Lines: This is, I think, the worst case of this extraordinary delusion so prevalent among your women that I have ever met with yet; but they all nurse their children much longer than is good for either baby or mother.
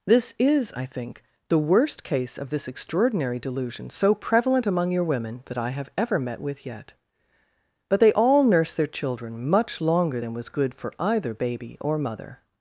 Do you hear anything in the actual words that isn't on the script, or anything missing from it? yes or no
yes